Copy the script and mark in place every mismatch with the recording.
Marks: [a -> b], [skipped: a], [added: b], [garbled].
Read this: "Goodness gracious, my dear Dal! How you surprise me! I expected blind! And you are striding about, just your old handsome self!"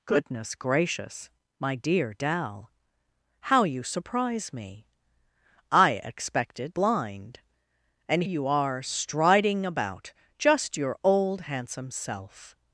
"Goodness gracious, my dear Dal! How you surprise me! I expected blind! And you are striding about, just your old handsome self!"